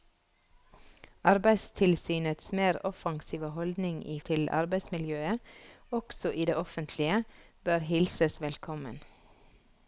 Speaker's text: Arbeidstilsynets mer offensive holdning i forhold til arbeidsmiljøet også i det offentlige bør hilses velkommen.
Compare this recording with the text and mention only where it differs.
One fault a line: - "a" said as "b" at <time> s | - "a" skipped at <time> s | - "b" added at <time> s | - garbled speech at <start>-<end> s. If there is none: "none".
- "forhold" skipped at 4.2 s